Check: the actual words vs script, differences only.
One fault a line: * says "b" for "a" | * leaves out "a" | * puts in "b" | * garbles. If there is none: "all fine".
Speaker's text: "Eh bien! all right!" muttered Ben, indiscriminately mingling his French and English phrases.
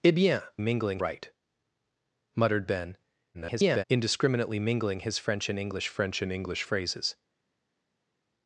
* says "mingling" for "all"
* garbles
* puts in "French and English"